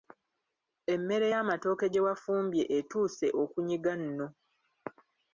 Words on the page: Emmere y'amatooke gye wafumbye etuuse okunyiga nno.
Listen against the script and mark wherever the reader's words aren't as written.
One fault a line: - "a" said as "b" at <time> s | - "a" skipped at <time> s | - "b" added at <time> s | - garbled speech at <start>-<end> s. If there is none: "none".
none